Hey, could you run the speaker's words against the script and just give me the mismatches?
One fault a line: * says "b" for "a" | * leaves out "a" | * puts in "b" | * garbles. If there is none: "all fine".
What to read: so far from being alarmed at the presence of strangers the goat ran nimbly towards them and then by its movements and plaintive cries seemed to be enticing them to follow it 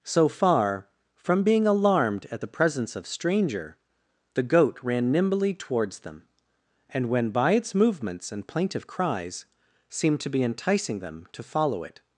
* says "stranger" for "strangers"
* says "when" for "then"